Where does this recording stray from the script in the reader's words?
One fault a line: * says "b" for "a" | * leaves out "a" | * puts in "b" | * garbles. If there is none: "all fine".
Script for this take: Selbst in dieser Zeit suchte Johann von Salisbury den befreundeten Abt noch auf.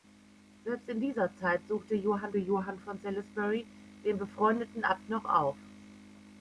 * puts in "Johann"